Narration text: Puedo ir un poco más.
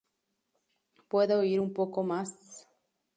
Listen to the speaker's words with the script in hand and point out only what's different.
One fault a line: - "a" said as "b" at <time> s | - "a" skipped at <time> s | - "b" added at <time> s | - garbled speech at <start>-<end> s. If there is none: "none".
none